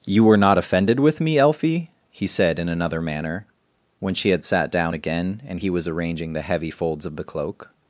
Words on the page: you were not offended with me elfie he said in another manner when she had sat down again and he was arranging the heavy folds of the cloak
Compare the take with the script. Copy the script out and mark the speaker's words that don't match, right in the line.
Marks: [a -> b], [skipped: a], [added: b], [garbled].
you were not offended with me elfie he said in another manner when she had sat down again and he was arranging the heavy folds of the cloak